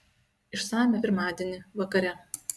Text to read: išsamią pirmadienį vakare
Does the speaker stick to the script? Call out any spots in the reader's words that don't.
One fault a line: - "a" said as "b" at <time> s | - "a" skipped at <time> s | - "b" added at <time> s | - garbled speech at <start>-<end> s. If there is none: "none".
none